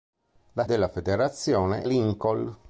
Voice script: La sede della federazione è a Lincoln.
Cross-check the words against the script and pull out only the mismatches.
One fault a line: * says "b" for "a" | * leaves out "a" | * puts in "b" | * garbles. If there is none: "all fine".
* leaves out "sede"
* leaves out "è a"